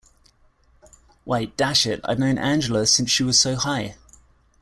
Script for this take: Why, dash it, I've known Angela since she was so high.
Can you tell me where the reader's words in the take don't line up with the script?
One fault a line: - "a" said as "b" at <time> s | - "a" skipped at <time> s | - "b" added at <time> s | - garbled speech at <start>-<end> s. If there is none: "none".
none